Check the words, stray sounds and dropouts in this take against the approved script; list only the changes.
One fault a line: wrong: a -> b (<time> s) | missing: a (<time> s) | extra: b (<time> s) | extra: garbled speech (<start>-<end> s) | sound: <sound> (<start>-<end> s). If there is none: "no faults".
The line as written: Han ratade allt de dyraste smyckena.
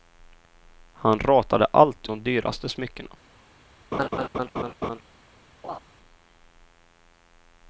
sound: laugh (3.9-5.0 s)
sound: laugh (5.6-5.8 s)